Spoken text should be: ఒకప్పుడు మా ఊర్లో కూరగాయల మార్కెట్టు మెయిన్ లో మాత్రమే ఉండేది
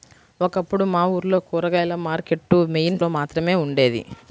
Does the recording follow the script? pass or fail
pass